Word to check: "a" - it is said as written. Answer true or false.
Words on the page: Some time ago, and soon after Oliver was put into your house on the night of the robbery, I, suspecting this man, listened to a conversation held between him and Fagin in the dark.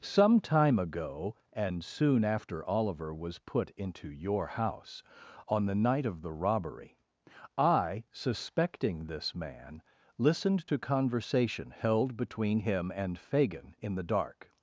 false